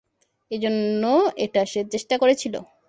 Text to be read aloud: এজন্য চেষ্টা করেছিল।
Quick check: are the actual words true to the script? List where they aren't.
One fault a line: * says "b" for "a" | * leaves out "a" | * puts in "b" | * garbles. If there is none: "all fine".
* puts in "এটা সে"